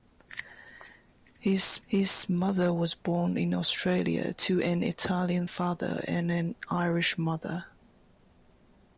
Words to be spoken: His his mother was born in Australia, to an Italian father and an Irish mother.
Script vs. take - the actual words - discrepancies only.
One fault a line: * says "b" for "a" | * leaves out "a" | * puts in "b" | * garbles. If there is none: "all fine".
all fine